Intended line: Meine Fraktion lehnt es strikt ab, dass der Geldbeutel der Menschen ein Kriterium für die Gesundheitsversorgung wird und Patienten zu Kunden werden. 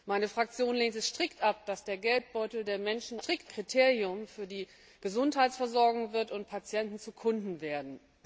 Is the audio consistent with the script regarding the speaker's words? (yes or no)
no